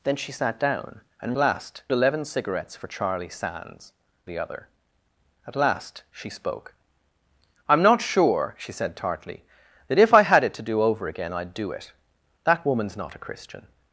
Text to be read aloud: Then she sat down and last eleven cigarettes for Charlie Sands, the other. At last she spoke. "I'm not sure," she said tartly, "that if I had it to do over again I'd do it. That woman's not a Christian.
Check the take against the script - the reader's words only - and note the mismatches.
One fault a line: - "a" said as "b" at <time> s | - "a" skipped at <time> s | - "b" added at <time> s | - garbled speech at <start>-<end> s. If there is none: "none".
none